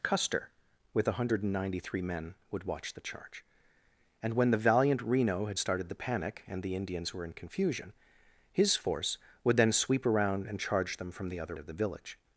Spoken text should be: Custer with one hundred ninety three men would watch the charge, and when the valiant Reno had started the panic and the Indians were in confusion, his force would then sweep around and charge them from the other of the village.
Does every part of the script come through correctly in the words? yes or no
yes